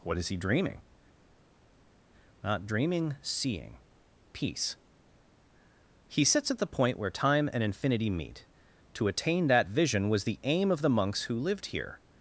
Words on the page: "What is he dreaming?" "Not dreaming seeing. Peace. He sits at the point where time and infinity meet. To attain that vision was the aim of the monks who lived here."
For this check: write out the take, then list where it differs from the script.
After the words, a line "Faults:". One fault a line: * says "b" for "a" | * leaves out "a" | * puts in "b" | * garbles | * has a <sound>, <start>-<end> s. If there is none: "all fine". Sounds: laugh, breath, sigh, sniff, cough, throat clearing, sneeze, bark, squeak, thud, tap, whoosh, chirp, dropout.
"What is he dreaming?" "Not dreaming seeing. Peace. He sits at the point where time and infinity meet. To attain that vision was the aim of the monks who lived here."
Faults:
all fine